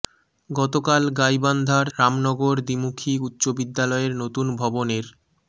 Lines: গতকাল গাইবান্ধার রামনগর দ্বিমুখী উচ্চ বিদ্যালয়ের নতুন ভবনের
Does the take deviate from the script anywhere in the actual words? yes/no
no